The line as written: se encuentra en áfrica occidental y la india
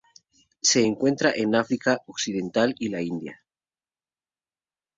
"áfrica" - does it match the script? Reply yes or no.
yes